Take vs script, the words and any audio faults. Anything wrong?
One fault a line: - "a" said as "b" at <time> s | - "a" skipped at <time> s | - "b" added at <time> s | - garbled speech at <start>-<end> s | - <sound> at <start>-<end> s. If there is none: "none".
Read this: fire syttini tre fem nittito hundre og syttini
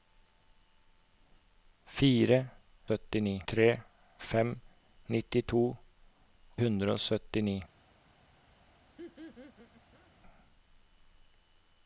- laugh at 9.0-10.1 s